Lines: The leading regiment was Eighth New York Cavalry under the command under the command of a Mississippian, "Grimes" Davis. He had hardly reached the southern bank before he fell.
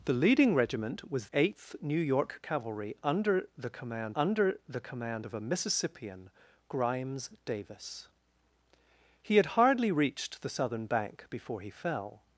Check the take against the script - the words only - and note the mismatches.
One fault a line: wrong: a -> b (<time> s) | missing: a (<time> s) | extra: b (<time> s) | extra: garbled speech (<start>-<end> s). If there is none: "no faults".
no faults